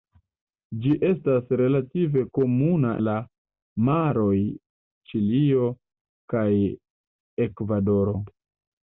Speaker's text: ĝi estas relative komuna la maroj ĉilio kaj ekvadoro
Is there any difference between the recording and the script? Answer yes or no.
no